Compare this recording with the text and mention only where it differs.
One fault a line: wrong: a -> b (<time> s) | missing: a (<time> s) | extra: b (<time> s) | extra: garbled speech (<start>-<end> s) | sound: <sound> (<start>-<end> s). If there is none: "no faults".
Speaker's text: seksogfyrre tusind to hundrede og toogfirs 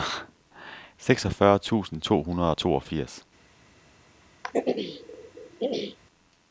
sound: throat clearing (4.4-6.0 s)